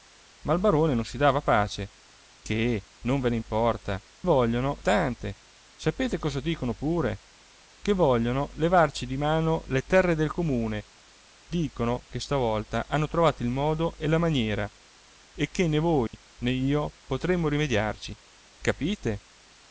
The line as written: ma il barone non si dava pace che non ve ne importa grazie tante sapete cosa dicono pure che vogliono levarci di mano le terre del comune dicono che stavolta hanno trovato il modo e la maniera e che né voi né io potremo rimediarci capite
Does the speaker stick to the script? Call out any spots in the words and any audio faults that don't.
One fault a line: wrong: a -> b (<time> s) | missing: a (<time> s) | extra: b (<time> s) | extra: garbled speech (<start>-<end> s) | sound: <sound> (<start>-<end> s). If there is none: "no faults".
wrong: grazie -> vogliono (4.2 s)
sound: dropout (16.1-16.1 s)